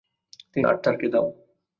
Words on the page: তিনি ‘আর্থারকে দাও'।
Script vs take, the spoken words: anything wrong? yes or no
no